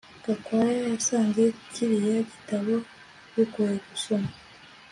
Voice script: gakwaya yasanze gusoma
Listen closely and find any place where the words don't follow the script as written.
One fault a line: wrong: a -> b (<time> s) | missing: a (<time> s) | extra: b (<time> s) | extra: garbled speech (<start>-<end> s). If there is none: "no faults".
extra: kiriya gitabo bigoye (1.7 s)